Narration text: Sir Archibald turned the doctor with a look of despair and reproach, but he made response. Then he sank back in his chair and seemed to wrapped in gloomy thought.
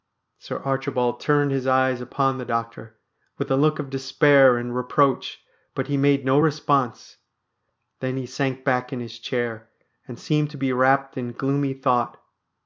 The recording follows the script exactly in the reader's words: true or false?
false